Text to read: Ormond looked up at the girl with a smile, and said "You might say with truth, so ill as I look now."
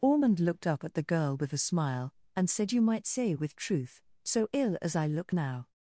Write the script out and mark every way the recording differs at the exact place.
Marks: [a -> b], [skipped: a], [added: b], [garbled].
Ormond looked up at the girl with a smile, and said "You might say with truth, so ill as I look now."